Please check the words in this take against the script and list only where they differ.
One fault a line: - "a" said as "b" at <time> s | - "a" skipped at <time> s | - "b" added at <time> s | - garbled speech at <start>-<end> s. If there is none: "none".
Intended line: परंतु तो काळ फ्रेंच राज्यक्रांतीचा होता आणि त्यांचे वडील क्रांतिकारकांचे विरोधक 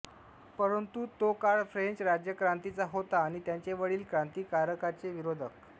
none